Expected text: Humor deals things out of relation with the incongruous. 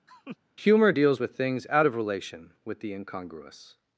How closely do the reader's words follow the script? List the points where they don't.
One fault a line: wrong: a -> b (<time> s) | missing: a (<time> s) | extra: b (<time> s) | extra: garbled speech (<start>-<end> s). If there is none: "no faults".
extra: with (1.2 s)